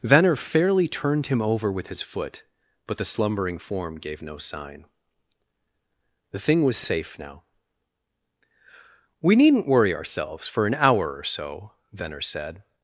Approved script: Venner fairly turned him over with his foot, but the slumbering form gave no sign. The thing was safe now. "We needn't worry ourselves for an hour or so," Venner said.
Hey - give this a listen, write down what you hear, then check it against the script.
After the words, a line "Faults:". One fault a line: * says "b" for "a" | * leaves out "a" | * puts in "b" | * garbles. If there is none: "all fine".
Venner fairly turned him over with his foot, but the slumbering form gave no sign. The thing was safe now. "We needn't worry ourselves for an hour or so," Venner said.
Faults:
all fine